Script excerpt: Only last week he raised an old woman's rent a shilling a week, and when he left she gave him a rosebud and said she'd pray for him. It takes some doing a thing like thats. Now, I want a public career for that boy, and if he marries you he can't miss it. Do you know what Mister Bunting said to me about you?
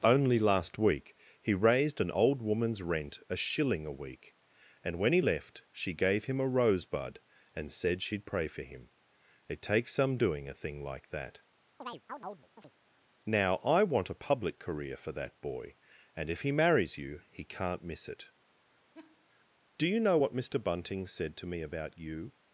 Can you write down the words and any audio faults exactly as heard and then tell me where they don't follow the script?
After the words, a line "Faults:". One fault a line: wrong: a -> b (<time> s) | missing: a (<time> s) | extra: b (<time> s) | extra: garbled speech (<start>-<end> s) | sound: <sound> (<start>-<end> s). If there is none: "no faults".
Only last week he raised an old woman's rent a shilling a week, and when he left she gave him a rosebud and said she'd pray for him. It takes some doing a thing like that. Now, I want a public career for that boy, and if he marries you he can't miss it. Do you know what Mister Bunting said to me about you?
Faults:
wrong: thats -> that (11.1 s)
sound: chirp (11.8-12.7 s)
sound: laugh (18.9-19.3 s)